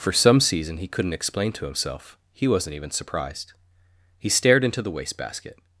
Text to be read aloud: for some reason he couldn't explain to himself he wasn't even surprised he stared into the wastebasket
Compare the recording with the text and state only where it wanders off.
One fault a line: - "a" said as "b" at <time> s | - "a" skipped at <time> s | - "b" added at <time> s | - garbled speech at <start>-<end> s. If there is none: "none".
- "reason" said as "season" at 0.4 s